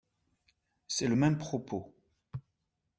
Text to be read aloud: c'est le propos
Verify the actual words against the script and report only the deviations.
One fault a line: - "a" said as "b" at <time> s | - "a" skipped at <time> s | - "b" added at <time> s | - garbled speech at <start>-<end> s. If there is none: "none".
- "même" added at 1.1 s